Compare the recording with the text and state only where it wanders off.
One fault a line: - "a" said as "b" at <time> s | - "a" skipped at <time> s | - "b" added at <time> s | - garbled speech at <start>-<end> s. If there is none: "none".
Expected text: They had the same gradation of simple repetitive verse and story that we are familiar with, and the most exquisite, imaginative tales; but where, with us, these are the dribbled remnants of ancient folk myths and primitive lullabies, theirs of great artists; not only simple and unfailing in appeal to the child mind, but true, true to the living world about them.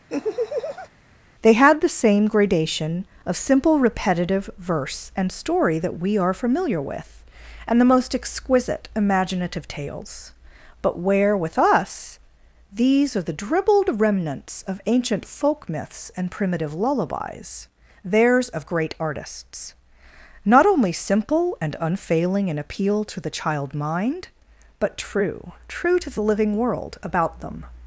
none